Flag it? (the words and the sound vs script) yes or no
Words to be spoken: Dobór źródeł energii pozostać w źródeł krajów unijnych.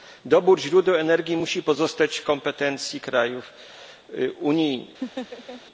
yes